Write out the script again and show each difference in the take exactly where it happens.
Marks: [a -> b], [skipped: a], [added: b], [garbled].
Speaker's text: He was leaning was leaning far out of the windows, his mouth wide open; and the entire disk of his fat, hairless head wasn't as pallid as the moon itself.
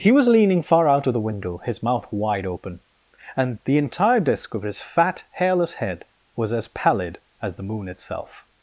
He was leaning [skipped: was leaning] far out of the [windows, -> window] his mouth wide open; and the entire disk of his fat, hairless head [wasn't -> was] as pallid as the moon itself.